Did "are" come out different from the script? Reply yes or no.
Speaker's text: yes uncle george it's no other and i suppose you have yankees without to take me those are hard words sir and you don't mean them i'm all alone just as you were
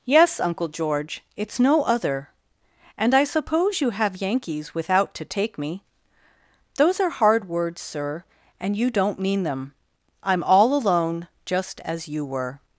no